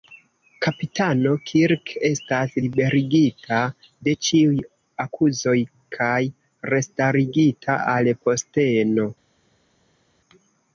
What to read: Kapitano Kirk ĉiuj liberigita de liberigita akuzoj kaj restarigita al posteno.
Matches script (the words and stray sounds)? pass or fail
fail